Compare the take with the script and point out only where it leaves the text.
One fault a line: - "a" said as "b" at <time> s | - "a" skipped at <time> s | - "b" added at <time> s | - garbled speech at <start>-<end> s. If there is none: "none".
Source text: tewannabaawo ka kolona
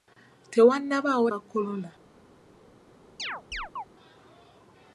none